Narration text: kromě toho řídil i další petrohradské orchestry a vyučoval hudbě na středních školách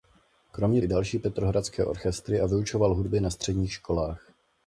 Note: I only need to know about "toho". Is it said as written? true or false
false